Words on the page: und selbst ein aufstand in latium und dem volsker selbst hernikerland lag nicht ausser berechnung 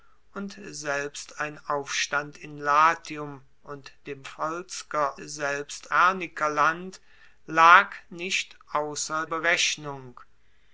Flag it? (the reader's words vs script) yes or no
no